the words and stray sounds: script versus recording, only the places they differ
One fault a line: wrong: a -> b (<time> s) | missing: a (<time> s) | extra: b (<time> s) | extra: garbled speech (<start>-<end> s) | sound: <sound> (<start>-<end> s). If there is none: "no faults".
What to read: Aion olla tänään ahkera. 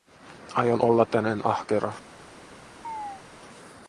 sound: chirp (2.8-3.2 s)